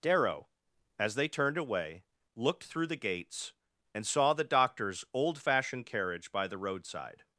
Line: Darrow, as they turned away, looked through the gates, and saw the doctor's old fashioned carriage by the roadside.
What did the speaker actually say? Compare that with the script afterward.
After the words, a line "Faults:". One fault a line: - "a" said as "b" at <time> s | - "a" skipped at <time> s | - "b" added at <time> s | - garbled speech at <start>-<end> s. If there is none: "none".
Darrow, as they turned away, looked through the gates, and saw the doctor's old fashioned carriage by the roadside.
Faults:
none